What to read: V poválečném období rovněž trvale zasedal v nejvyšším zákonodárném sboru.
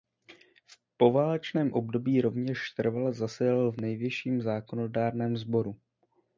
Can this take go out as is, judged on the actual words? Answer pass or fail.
pass